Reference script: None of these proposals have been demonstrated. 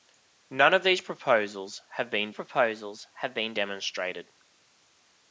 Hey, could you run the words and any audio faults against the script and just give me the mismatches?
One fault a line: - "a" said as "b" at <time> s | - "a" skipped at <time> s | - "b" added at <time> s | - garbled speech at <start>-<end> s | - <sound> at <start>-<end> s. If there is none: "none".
- "proposals have been" added at 2.3 s